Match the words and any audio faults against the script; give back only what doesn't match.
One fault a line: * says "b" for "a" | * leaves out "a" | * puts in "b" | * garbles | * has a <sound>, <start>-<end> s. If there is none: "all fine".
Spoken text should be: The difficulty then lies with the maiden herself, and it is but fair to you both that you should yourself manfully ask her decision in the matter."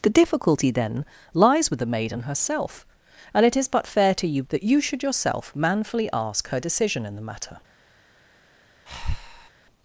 * leaves out "both"
* has a breath, 8.9-9.5 s